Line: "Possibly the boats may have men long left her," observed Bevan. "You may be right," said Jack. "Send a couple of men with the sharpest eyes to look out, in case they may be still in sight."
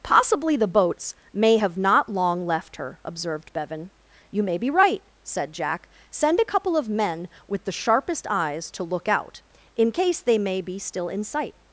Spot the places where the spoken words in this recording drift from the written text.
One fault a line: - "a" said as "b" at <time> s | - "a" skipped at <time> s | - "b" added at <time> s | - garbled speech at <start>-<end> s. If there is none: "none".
- "men" said as "not" at 1.8 s